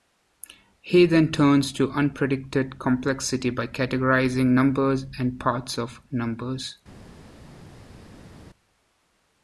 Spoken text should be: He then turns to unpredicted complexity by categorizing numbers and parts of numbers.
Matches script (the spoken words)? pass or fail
pass